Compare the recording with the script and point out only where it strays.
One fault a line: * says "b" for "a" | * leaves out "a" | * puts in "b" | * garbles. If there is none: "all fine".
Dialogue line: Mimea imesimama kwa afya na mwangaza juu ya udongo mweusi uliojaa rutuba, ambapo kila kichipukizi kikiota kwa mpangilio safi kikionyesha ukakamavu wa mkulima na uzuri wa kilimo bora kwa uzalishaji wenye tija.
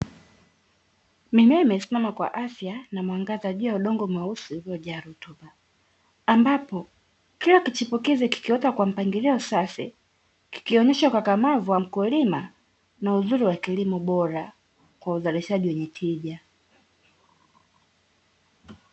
all fine